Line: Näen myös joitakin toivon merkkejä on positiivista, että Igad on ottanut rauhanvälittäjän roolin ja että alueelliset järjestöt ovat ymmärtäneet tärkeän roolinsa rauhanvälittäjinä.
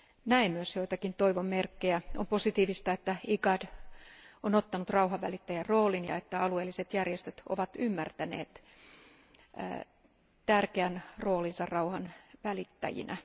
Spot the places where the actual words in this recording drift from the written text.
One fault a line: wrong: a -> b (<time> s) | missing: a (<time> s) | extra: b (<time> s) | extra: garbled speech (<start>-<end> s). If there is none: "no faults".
no faults